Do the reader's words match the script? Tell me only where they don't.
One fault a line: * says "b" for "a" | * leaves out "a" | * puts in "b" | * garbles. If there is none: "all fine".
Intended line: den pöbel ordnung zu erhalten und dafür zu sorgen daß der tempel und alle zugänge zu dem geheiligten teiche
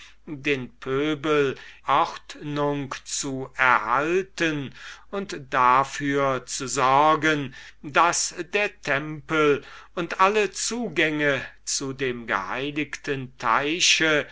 all fine